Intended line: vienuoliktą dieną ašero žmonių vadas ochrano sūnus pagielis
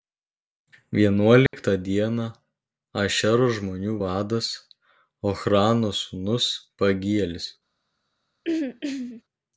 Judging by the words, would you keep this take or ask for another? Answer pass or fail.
pass